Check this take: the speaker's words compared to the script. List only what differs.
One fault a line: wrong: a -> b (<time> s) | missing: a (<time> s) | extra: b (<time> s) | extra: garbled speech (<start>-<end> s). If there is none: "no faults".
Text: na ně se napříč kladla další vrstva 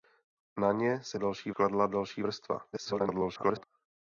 wrong: napříč -> další (1.1 s)
extra: garbled speech (2.7-3.6 s)